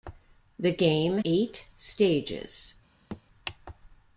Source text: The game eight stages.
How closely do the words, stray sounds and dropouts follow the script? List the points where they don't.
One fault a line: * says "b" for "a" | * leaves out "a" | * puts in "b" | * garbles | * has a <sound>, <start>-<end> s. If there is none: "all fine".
* has a thud, 3.1-3.2 s